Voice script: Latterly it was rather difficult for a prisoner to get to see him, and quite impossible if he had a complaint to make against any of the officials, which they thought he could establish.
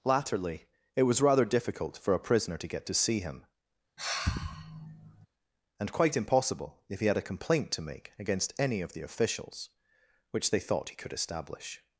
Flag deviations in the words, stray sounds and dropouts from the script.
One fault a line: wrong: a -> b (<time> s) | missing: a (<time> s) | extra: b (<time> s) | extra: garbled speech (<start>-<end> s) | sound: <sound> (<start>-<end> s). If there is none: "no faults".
sound: sigh (4.0-5.3 s)